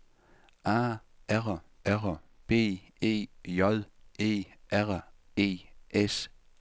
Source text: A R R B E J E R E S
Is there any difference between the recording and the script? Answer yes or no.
no